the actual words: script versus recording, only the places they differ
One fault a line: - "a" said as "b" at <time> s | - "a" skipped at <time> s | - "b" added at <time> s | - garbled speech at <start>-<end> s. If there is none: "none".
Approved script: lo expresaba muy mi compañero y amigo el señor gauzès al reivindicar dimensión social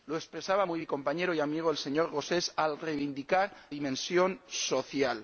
none